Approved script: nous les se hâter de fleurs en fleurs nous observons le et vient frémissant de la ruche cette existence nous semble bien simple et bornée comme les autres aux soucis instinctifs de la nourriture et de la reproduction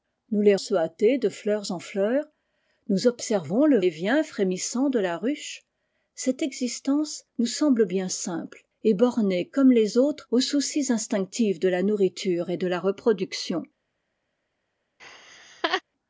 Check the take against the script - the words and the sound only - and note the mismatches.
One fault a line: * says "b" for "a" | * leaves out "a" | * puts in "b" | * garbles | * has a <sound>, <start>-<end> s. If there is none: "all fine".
* has a laugh, 15.0-15.8 s